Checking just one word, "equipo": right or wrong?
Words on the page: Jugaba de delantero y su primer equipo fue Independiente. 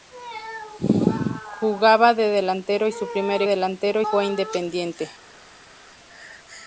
wrong